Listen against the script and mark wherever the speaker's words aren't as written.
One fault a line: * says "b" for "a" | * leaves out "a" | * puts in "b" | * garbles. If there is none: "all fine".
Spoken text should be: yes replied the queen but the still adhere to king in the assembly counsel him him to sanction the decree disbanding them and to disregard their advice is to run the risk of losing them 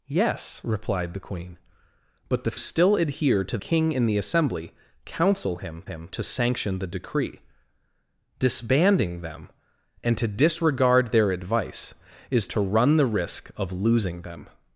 all fine